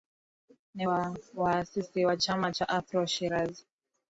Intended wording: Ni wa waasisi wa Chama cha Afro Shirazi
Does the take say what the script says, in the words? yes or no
yes